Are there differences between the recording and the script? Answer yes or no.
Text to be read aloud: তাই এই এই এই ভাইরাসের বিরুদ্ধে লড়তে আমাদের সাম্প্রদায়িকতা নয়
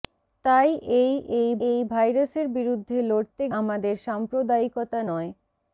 no